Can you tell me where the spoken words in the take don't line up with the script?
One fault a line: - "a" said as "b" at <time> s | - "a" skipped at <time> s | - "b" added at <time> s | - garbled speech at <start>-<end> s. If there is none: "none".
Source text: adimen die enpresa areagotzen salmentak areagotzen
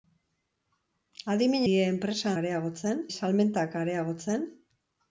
none